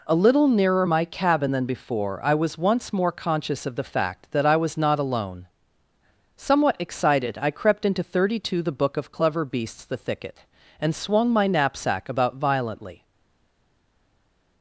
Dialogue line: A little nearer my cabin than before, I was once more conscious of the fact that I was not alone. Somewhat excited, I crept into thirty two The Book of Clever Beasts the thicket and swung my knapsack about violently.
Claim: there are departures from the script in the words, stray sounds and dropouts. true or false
false